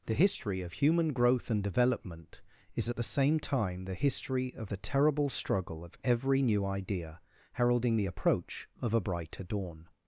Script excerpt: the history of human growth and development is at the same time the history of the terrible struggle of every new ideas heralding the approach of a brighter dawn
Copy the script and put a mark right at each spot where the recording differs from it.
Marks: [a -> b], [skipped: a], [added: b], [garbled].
the history of human growth and development is at the same time the history of the terrible struggle of every new [ideas -> idea] heralding the approach of a brighter dawn